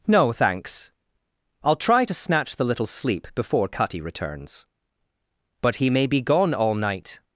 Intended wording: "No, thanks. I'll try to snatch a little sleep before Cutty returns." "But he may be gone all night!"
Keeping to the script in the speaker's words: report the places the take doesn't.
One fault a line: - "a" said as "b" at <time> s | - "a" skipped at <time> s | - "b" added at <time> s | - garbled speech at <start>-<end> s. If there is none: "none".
- "a" said as "the" at 2.5 s